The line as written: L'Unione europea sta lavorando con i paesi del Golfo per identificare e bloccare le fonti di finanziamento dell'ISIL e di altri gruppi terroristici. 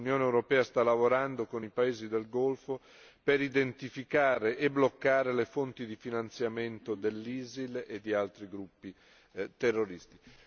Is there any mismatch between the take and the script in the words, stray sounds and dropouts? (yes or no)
no